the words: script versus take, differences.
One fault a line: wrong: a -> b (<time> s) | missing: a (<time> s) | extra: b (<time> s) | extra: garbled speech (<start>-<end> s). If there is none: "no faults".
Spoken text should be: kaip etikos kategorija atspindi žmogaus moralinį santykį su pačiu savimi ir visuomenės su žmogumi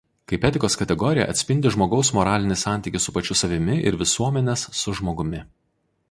no faults